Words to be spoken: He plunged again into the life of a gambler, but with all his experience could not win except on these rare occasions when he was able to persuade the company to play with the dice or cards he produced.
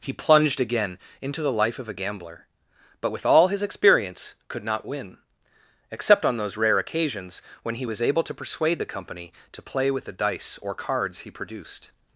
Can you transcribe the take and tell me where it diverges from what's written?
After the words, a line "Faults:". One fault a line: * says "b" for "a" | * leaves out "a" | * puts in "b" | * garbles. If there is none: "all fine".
He plunged again into the life of a gambler, but with all his experience could not win except on those rare occasions when he was able to persuade the company to play with the dice or cards he produced.
Faults:
* says "those" for "these"